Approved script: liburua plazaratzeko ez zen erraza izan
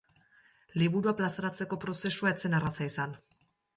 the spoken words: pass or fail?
fail